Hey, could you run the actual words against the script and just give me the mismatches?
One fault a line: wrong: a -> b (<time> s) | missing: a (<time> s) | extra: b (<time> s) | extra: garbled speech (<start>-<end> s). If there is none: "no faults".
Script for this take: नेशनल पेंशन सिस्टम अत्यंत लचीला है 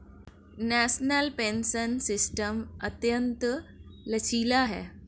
no faults